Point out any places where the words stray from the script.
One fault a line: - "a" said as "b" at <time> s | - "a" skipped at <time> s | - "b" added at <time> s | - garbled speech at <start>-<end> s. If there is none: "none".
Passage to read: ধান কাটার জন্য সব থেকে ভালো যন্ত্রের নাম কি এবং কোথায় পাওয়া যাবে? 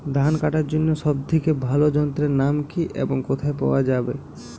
none